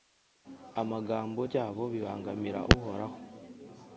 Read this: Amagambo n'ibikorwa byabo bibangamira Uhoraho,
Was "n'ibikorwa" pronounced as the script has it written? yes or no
no